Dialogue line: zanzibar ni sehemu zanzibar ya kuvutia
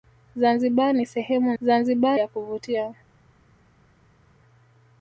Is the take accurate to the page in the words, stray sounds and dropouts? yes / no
yes